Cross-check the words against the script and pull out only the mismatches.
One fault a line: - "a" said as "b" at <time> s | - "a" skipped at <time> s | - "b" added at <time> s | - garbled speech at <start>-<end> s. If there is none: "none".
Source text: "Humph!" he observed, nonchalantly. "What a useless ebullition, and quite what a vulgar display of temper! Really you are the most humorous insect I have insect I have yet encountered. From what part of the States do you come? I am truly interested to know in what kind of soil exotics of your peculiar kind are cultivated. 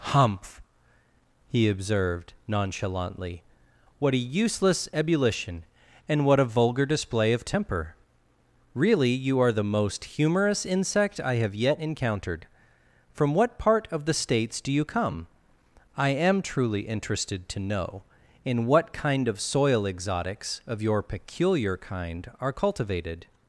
- "quite" skipped at 6.2 s
- "insect I have" skipped at 11.5 s